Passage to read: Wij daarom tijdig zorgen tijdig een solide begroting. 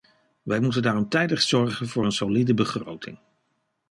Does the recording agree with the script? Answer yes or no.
no